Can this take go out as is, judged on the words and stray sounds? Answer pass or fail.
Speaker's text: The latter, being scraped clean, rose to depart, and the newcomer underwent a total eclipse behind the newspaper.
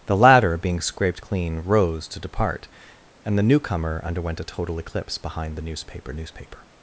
fail